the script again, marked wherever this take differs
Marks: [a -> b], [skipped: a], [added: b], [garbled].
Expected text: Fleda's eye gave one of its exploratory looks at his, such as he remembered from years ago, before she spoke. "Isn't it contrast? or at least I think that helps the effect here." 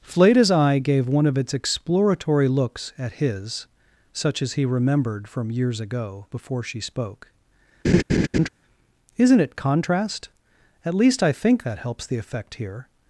Fleda's eye gave one of its exploratory looks at his, such as he remembered from years ago, before she spoke. "Isn't it contrast? [skipped: or] at least I think that helps the effect here."